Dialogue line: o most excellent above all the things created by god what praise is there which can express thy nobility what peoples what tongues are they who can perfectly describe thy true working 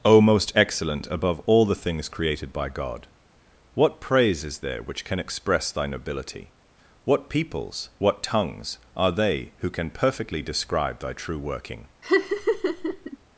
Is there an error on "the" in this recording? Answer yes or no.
no